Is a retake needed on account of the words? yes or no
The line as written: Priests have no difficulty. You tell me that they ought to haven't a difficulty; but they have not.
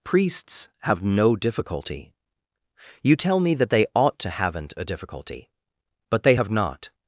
no